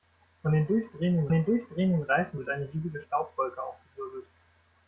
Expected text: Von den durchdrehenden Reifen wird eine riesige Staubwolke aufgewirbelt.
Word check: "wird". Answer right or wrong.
right